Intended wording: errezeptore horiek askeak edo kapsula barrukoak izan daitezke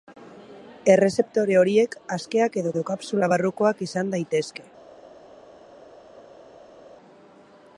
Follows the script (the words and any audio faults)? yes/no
no